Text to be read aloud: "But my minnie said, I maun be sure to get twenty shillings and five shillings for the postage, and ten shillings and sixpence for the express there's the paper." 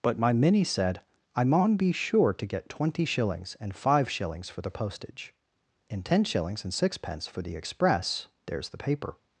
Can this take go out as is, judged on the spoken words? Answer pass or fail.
pass